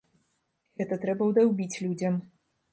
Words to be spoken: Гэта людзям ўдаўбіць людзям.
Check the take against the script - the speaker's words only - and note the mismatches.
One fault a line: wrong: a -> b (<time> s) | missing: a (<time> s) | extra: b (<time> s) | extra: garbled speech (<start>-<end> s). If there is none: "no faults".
wrong: людзям -> трэба (1.1 s)